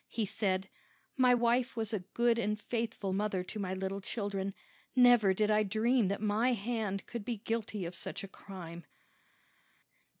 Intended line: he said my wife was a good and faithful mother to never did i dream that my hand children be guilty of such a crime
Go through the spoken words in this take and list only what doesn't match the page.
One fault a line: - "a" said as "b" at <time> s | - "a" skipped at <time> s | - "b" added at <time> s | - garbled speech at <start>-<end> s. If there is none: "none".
- "my little children" added at 3.6 s
- "children" said as "could" at 7.1 s